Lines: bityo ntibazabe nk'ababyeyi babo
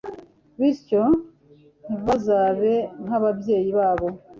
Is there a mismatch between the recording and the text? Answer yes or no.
no